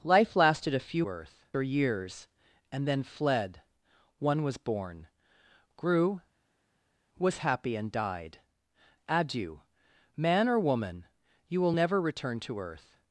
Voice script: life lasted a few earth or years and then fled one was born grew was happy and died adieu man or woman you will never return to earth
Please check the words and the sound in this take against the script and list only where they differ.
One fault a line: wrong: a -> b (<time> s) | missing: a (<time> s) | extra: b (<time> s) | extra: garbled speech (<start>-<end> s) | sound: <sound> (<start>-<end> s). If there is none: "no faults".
no faults